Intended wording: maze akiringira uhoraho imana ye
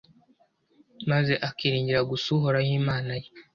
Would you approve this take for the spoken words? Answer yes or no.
no